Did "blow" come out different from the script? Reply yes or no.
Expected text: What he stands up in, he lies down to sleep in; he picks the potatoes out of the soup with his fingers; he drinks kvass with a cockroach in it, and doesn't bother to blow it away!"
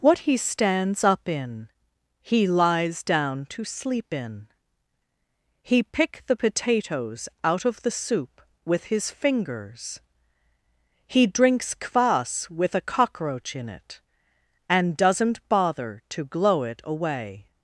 yes